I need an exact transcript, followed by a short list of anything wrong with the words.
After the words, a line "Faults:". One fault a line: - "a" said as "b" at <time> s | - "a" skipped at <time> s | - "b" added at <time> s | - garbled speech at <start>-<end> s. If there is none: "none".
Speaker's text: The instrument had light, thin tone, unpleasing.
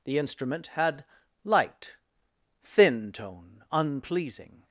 The instrument had light, thin tone, unpleasing.
Faults:
none